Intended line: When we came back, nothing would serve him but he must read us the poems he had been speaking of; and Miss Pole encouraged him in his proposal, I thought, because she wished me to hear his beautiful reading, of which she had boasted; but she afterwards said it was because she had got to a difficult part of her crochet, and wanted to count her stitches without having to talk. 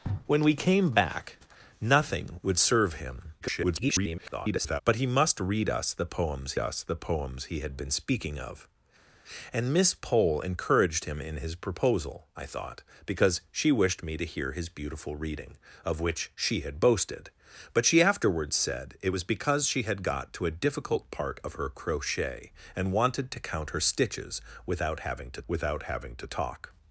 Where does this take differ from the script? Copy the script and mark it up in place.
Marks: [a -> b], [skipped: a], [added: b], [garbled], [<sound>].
When we came back, nothing would serve him [garbled] but he must read us the poems [added: us the poems] he had been speaking of; and Miss Pole encouraged him in his proposal, I thought, because she wished me to hear his beautiful reading, of which she had boasted; but she afterwards said it was because she had got to a difficult part of her crochet, and wanted to count her stitches without having to [added: without having to] talk.